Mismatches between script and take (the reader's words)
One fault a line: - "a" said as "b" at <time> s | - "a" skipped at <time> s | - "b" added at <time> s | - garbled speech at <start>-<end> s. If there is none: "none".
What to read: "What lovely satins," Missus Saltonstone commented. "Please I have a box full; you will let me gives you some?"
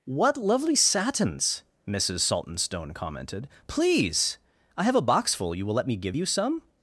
- "gives" said as "give" at 6.0 s